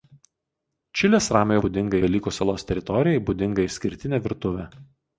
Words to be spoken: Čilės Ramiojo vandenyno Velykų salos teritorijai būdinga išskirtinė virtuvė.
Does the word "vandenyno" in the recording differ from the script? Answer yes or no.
yes